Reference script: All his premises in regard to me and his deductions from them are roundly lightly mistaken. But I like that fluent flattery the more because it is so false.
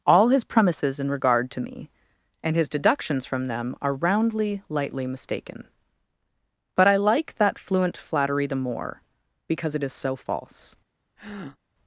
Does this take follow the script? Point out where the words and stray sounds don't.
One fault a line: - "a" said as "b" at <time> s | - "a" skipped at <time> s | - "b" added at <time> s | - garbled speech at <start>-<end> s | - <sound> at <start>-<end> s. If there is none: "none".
- breath at 11.2-11.6 s